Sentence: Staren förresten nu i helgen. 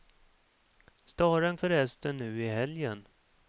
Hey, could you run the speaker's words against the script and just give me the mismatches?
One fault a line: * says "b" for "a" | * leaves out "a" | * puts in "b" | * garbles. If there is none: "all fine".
all fine